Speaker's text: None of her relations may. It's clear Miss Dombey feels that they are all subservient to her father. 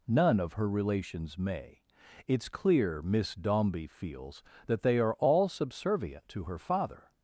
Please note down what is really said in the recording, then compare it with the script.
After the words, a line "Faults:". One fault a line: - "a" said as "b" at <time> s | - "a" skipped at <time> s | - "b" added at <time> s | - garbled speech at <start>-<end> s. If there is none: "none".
None of her relations may. It's clear Miss Dombey feels that they are all subservient to her father.
Faults:
none